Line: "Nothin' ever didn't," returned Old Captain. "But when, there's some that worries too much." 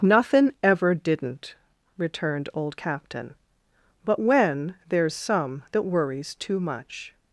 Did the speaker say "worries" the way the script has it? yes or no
yes